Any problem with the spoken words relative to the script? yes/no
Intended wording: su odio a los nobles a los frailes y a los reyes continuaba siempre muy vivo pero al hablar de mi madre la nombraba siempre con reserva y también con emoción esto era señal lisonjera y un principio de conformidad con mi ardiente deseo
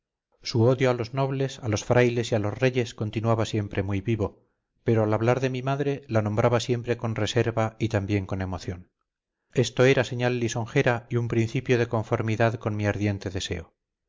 no